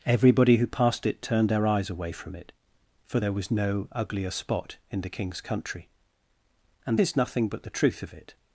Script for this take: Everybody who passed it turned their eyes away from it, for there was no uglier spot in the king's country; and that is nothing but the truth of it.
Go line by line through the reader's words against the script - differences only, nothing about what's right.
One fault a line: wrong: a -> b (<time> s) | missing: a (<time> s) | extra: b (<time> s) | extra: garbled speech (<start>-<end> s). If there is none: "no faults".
missing: that (7.0 s)